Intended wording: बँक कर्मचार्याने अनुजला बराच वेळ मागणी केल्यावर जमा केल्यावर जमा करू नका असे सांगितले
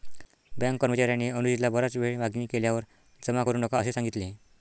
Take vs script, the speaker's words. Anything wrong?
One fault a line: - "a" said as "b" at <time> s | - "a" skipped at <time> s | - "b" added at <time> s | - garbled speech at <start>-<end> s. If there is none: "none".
- "केल्यावर जमा" skipped at 3.4 s